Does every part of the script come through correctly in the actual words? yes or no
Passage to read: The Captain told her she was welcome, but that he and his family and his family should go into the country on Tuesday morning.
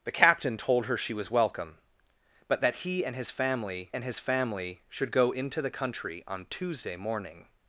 yes